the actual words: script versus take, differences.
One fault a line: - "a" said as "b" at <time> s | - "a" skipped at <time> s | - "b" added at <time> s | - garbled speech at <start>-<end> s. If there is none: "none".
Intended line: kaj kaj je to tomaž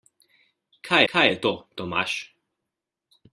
none